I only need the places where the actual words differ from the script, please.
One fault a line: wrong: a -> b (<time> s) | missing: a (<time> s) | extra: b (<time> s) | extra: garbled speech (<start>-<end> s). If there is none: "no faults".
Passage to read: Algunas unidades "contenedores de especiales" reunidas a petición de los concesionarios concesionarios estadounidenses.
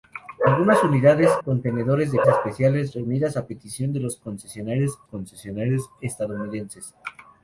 no faults